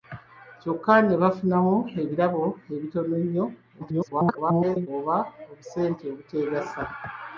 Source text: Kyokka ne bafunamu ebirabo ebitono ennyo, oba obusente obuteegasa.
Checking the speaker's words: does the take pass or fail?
fail